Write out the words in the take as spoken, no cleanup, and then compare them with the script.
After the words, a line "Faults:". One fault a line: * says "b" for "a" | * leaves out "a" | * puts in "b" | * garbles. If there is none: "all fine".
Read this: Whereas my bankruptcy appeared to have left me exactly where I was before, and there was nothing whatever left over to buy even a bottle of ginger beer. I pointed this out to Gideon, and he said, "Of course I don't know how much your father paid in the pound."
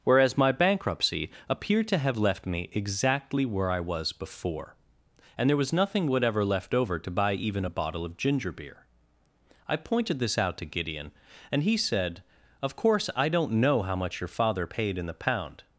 Whereas my bankruptcy appeared to have left me exactly where I was before, and there was nothing whatever left over to buy even a bottle of ginger beer. I pointed this out to Gideon, and he said, "Of course I don't know how much your father paid in the pound."
Faults:
all fine